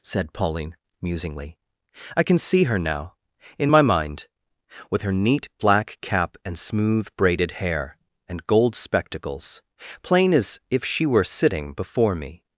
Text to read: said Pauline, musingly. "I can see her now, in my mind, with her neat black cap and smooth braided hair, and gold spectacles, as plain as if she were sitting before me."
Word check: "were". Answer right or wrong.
right